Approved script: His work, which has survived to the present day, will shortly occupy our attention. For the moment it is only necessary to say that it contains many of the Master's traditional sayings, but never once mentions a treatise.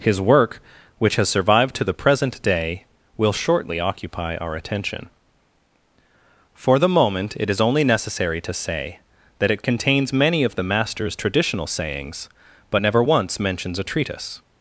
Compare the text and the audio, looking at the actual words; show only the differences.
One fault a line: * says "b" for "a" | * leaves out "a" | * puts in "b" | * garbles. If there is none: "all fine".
all fine